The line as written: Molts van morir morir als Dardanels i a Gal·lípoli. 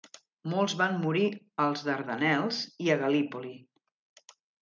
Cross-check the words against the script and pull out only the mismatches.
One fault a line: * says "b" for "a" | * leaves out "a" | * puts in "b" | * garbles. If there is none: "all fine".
* leaves out "morir"